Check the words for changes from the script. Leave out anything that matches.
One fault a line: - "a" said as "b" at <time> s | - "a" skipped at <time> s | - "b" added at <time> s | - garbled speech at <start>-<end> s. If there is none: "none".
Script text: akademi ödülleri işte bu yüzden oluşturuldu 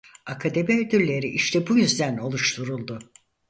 none